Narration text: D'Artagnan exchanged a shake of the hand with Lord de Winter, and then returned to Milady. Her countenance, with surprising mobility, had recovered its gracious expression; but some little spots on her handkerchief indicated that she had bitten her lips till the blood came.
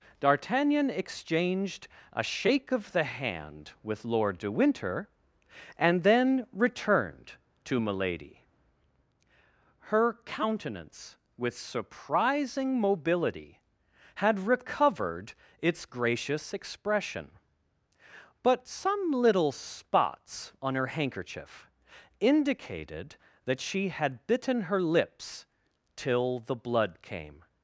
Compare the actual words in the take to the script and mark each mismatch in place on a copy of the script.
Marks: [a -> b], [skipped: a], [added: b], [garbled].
D'Artagnan exchanged a shake of the hand with Lord de Winter, and then returned to Milady. Her countenance, with surprising mobility, had recovered its gracious expression; but some little spots on her handkerchief indicated that she had bitten her lips till the blood came.